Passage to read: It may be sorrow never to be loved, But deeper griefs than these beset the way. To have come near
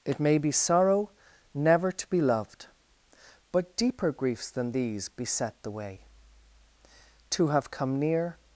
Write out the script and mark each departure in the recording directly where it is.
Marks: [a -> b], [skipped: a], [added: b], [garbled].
It may be sorrow never to be loved, But deeper griefs than these beset the way. To have come near